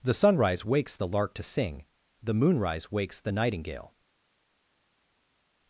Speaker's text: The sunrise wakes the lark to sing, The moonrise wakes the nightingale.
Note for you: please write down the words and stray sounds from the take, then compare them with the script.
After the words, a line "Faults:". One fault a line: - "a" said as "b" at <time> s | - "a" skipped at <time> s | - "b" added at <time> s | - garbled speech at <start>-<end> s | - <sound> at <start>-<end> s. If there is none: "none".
The sunrise wakes the lark to sing, The moonrise wakes the nightingale.
Faults:
none